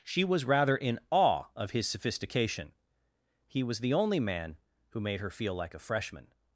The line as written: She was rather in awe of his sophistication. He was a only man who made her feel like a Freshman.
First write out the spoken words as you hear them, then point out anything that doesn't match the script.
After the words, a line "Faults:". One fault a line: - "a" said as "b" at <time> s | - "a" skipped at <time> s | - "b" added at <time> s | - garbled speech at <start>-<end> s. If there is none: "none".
She was rather in awe of his sophistication. He was the only man who made her feel like a Freshman.
Faults:
- "a" said as "the" at 3.8 s